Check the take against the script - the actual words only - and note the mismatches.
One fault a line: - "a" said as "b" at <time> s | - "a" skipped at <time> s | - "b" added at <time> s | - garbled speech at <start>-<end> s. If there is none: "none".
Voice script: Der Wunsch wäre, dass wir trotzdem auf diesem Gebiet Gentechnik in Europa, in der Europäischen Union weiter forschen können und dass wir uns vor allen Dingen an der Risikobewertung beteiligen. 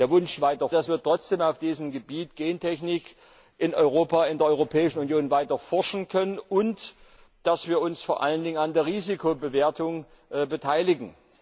- "wäre" said as "weiter" at 0.4 s